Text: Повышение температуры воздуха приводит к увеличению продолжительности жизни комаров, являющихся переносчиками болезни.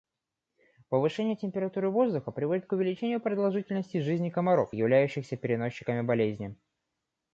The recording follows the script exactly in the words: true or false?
true